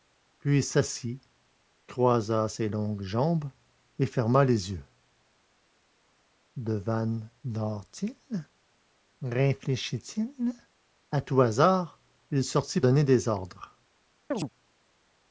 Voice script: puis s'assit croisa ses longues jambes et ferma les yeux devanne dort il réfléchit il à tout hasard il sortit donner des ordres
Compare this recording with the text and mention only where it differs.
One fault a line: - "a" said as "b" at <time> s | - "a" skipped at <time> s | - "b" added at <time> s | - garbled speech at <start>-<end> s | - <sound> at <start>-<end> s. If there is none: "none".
- chirp at 14.3-14.5 s